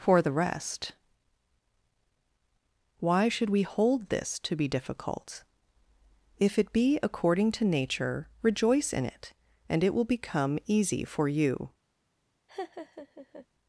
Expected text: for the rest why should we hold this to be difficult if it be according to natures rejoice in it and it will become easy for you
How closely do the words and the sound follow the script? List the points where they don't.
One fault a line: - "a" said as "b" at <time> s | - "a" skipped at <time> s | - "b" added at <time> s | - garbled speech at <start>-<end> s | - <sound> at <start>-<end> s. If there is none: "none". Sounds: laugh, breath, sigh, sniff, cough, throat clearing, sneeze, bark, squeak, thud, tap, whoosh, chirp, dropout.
- "natures" said as "nature" at 7.7 s
- laugh at 12.5-13.5 s